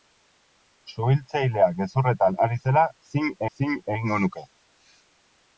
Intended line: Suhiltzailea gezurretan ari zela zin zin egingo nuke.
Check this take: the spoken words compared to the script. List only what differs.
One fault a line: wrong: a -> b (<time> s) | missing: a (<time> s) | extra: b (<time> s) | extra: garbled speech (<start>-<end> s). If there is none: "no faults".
no faults